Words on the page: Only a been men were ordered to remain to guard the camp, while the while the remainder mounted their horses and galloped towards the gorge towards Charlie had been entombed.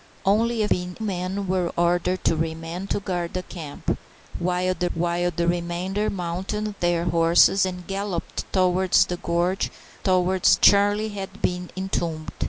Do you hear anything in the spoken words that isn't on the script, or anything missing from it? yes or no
no